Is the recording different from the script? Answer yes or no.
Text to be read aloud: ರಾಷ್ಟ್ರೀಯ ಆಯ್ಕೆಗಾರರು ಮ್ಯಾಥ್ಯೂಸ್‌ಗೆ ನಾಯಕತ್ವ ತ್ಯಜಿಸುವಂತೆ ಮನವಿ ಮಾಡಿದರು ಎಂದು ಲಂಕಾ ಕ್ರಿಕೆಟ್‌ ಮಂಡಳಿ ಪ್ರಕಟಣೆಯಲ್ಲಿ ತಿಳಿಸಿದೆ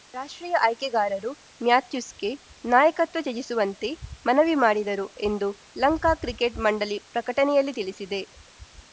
no